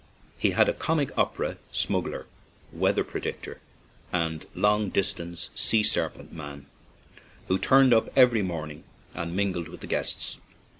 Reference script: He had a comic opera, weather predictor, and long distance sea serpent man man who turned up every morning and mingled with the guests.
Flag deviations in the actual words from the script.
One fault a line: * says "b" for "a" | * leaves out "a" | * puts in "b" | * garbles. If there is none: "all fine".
* puts in "smuggler"
* leaves out "man"